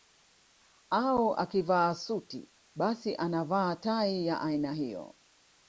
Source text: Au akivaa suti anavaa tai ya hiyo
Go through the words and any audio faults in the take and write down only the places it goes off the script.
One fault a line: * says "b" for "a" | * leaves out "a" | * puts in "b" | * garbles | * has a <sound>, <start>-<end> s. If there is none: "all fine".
* puts in "basi"
* puts in "aina"